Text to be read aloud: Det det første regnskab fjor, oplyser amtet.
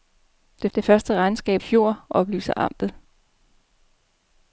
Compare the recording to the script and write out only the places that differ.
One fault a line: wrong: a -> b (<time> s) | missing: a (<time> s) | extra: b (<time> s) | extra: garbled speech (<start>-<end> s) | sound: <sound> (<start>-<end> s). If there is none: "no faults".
no faults